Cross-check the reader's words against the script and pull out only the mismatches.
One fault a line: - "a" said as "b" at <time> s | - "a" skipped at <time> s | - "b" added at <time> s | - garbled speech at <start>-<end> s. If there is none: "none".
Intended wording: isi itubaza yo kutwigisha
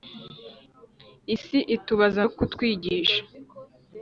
none